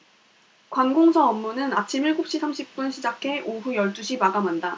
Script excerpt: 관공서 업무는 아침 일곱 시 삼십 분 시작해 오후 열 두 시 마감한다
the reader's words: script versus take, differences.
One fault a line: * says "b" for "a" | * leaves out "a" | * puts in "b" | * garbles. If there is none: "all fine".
all fine